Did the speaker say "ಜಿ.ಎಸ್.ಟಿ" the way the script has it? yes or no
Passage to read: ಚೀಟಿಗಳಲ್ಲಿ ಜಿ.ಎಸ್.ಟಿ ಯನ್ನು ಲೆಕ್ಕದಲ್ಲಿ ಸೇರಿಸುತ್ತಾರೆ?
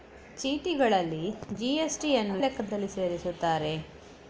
yes